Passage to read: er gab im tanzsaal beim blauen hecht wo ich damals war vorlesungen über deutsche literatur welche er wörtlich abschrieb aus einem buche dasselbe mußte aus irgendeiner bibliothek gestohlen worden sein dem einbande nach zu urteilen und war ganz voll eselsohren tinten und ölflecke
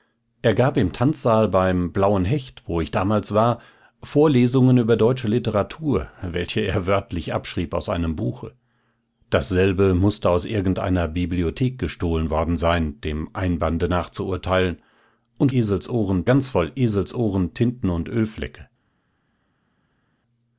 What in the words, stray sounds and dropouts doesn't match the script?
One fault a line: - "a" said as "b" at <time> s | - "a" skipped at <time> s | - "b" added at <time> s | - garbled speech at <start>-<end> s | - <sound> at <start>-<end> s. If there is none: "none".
- "war" said as "eselsohren" at 15.5 s